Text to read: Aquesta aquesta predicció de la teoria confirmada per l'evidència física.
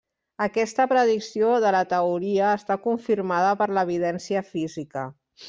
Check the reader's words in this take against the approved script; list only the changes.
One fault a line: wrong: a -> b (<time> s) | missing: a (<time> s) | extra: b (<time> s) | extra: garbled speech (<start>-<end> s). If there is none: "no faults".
missing: aquesta (0.9 s)
extra: està (2.6 s)